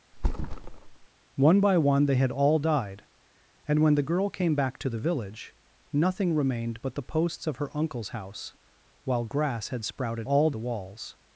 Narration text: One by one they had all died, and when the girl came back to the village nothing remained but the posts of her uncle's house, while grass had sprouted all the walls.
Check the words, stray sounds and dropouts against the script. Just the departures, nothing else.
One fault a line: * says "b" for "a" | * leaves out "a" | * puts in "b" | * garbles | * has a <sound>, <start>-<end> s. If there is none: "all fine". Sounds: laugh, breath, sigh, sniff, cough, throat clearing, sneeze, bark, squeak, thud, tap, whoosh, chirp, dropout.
* has a thud, 0.1-1.1 s